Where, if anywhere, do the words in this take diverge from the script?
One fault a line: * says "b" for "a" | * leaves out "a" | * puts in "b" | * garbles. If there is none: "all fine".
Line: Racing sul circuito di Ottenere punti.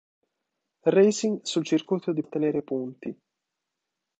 all fine